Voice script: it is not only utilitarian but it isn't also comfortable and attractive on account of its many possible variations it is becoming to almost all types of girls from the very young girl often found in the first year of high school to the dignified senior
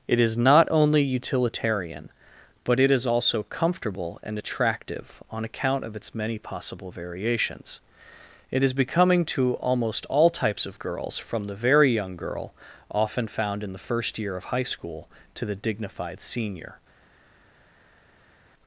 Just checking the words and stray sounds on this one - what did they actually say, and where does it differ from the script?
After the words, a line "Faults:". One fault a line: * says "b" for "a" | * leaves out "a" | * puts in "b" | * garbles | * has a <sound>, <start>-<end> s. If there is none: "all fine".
it is not only utilitarian but it is also comfortable and attractive on account of its many possible variations it is becoming to almost all types of girls from the very young girl often found in the first year of high school to the dignified senior
Faults:
* says "is" for "isn't"